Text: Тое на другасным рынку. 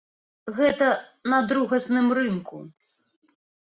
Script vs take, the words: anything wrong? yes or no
yes